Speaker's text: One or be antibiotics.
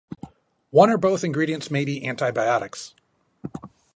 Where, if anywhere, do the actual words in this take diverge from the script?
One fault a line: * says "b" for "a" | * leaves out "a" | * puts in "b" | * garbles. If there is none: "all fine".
* puts in "both ingredients may"